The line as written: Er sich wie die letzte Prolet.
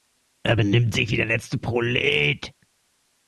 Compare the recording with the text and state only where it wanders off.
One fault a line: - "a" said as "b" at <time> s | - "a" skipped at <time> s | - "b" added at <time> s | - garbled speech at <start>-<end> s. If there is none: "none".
- "benimmt" added at 0.5 s
- "die" said as "der" at 1.2 s